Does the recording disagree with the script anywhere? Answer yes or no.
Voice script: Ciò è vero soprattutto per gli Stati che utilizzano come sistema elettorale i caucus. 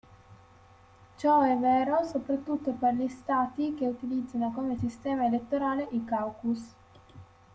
no